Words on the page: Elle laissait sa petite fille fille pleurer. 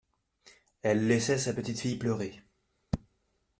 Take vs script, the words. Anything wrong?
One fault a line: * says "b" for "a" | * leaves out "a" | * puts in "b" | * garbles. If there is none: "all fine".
* leaves out "fille"